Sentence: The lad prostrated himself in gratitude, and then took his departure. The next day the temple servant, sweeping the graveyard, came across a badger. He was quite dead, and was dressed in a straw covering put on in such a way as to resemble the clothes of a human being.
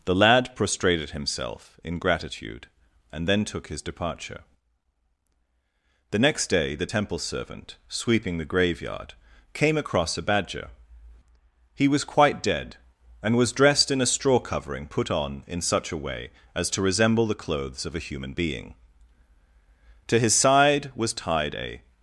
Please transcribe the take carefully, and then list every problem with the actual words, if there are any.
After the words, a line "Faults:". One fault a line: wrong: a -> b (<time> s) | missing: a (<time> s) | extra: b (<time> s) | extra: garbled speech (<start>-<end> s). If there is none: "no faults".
The lad prostrated himself in gratitude, and then took his departure. The next day the temple servant, sweeping the graveyard, came across a badger. He was quite dead, and was dressed in a straw covering put on in such a way as to resemble the clothes of a human being. To his side was tied a
Faults:
extra: To his side was tied a (20.1 s)